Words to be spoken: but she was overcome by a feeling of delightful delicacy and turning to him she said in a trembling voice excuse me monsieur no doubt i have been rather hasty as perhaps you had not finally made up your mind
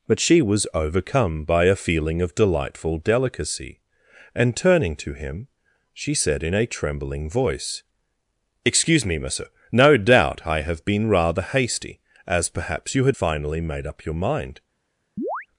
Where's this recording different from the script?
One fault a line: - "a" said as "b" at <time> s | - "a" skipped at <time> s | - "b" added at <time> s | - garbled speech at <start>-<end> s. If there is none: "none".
- "not" skipped at 13.2 s